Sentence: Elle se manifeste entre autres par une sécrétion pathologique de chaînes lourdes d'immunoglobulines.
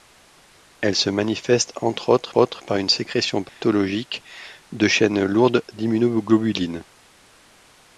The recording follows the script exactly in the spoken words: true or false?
false